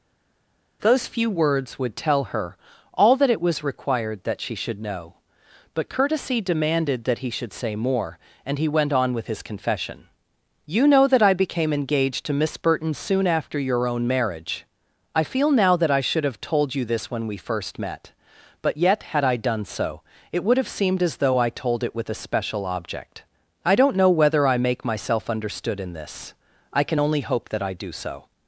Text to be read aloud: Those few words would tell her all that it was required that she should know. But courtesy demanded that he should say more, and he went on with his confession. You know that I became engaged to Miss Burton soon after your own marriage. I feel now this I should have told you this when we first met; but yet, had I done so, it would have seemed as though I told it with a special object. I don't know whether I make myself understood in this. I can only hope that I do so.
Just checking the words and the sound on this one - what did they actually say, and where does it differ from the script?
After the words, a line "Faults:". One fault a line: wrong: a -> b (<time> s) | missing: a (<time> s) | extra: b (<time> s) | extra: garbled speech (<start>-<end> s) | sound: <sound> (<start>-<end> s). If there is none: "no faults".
Those few words would tell her all that it was required that she should know. But courtesy demanded that he should say more, and he went on with his confession. You know that I became engaged to Miss Burton soon after your own marriage. I feel now that I should have told you this when we first met; but yet, had I done so, it would have seemed as though I told it with a special object. I don't know whether I make myself understood in this. I can only hope that I do so.
Faults:
wrong: this -> that (15.8 s)